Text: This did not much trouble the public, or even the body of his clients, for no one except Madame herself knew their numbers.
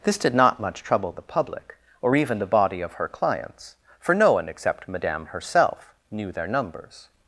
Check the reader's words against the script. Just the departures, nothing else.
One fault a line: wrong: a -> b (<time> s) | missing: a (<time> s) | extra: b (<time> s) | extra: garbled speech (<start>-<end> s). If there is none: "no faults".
wrong: his -> her (2.9 s)